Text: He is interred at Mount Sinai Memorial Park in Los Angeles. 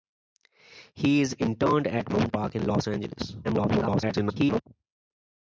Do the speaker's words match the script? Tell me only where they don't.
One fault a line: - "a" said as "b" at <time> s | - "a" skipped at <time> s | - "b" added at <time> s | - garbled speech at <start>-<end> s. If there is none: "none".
- "Sinai Memorial" skipped at 2.3 s
- garbled speech at 3.4-4.6 s